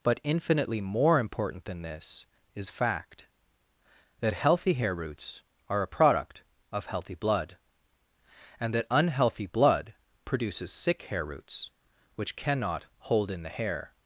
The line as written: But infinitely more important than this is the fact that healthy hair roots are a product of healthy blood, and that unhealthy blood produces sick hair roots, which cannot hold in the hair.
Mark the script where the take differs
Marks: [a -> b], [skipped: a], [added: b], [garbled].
But infinitely more important than this is [skipped: the] fact that healthy hair roots are a product of healthy blood, and that unhealthy blood produces sick hair roots, which cannot hold in the hair.